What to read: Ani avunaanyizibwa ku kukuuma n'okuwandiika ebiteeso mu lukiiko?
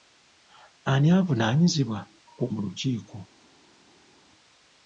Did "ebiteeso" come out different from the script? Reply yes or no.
yes